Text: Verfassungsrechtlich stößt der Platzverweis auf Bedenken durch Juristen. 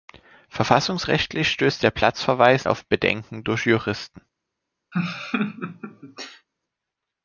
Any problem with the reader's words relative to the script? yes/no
no